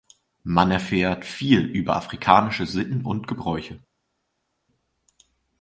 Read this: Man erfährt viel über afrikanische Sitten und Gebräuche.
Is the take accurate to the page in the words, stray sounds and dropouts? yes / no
yes